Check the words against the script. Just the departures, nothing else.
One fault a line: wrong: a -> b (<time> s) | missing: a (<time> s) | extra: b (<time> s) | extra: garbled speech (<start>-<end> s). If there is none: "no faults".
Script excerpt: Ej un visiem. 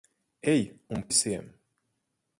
no faults